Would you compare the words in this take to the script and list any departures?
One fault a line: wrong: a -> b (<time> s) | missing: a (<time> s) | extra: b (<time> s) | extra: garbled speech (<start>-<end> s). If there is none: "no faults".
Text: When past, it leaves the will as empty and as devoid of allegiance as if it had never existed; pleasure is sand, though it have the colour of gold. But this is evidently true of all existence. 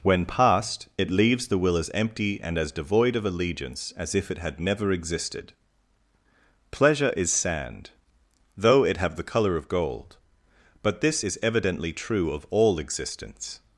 no faults